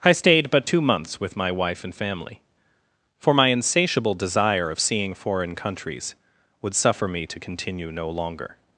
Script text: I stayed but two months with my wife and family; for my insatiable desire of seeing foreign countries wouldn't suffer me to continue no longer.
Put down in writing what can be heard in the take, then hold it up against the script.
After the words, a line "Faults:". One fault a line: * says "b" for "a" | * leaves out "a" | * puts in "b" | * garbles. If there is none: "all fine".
I stayed but two months with my wife and family; for my insatiable desire of seeing foreign countries would suffer me to continue no longer.
Faults:
* says "would" for "wouldn't"